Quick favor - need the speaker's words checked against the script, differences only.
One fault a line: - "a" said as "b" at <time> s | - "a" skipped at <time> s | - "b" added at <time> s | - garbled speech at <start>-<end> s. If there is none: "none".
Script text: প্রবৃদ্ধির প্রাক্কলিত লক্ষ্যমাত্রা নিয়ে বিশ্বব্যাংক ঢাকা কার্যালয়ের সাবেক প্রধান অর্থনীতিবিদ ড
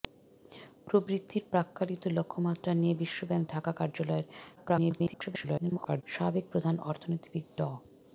- garbled speech at 4.6-6.0 s